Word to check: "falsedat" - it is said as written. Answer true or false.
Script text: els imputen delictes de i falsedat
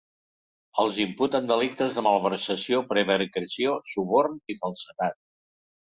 true